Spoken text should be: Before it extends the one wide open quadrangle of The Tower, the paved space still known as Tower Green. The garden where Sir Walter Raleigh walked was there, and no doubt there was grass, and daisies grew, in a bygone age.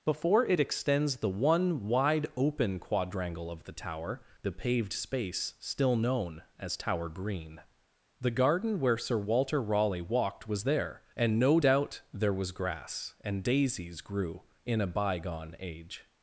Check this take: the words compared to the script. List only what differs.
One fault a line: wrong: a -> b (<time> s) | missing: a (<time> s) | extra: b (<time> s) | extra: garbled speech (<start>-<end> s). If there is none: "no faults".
no faults